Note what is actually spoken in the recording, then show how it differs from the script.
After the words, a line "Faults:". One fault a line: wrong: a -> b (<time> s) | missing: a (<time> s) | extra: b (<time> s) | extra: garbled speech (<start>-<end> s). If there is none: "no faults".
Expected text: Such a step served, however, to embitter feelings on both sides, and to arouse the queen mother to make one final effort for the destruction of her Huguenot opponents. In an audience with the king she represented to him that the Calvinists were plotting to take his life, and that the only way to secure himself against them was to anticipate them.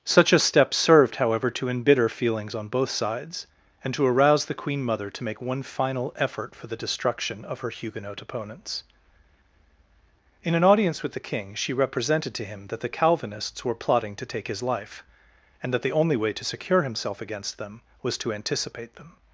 Such a step served, however, to embitter feelings on both sides, and to arouse the queen mother to make one final effort for the destruction of her Huguenot opponents. In an audience with the king she represented to him that the Calvinists were plotting to take his life, and that the only way to secure himself against them was to anticipate them.
Faults:
no faults